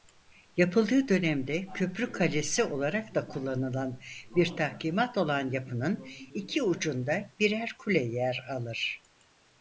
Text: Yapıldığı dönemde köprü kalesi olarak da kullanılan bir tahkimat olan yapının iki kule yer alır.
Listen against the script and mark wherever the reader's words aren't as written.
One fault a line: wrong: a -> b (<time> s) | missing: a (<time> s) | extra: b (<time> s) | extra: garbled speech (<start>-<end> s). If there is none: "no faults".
extra: ucunda birer (6.6 s)